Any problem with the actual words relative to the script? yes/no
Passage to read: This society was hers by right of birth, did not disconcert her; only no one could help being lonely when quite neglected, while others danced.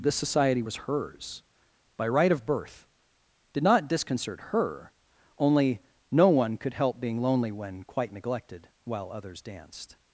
no